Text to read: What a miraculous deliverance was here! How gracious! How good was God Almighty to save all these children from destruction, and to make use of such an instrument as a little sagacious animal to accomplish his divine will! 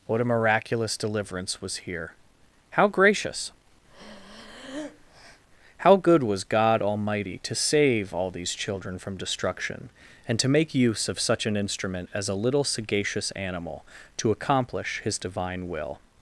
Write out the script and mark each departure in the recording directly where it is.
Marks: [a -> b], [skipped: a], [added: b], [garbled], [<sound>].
What a miraculous deliverance was here! How gracious! [breath] How good was God Almighty to save all these children from destruction, and to make use of such an instrument as a little sagacious animal to accomplish his divine will!